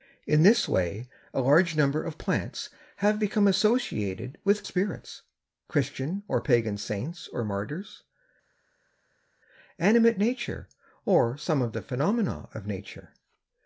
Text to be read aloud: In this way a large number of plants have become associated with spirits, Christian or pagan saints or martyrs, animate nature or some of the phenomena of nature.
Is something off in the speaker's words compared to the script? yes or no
no